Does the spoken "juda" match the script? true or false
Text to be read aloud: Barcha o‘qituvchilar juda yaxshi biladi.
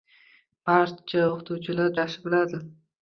false